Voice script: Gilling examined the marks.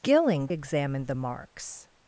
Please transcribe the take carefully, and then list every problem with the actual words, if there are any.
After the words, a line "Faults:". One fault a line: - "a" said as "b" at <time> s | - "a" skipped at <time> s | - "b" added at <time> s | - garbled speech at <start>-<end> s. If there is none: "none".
Gilling examined the marks.
Faults:
none